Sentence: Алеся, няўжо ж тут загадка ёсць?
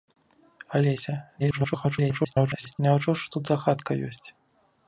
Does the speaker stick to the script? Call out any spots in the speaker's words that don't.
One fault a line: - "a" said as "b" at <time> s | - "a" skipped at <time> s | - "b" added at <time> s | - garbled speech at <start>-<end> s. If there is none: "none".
- garbled speech at 1.4-2.8 s